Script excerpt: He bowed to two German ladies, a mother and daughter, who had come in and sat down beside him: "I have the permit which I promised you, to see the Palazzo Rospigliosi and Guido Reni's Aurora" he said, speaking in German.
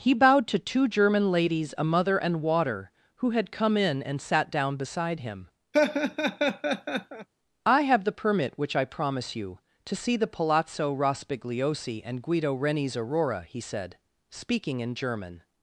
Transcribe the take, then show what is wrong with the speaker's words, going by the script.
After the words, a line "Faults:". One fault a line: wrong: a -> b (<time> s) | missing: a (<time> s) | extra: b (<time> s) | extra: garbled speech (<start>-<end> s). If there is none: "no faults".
He bowed to two German ladies, a mother and water, who had come in and sat down beside him: "I have the permit which I promise you, to see the Palazzo Rospigliosi and Guido Reni's Aurora" he said, speaking in German.
Faults:
wrong: daughter -> water (2.4 s)
wrong: promised -> promise (8.9 s)